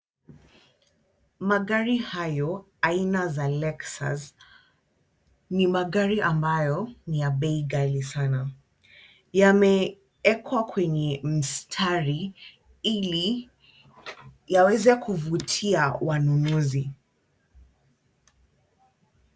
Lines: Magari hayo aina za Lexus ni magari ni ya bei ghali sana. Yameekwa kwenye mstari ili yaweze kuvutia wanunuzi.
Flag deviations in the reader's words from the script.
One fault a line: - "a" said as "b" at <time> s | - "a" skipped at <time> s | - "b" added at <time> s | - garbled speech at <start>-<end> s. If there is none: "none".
- "ambayo" added at 6.2 s